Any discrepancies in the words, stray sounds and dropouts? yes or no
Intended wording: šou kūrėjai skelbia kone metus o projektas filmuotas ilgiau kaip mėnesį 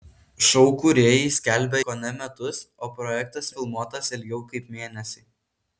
no